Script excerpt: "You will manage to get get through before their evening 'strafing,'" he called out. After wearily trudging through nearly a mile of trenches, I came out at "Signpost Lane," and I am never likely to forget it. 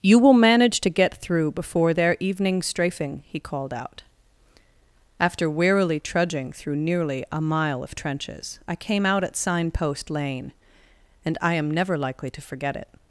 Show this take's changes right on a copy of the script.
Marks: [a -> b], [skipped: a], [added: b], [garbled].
"You will manage to get [skipped: get] through before their evening 'strafing,'" he called out. After wearily trudging through nearly a mile of trenches, I came out at "Signpost Lane," and I am never likely to forget it.